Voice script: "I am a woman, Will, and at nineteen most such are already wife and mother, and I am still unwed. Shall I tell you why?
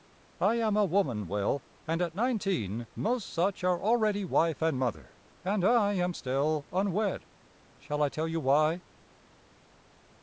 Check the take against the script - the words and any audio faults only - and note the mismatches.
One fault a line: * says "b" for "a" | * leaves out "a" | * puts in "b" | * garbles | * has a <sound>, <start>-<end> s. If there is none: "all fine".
all fine